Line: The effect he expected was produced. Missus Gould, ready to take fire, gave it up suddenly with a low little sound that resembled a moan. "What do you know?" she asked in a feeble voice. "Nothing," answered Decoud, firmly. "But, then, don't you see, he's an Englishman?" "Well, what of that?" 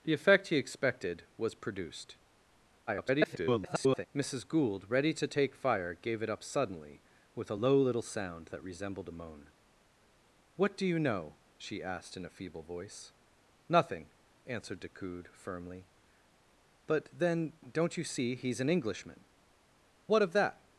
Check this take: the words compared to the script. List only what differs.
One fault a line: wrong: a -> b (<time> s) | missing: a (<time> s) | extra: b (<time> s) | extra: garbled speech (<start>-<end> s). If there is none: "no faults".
extra: garbled speech (2.9-4.1 s)
missing: Well (19.2 s)